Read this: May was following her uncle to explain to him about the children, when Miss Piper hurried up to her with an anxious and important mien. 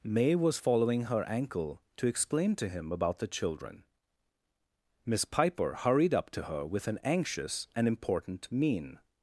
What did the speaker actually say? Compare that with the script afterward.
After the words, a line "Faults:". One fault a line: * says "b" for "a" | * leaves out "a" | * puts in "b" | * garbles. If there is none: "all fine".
May was following her ankle to explain to him about the children, Miss Piper hurried up to her with an anxious and important mien.
Faults:
* says "ankle" for "uncle"
* leaves out "when"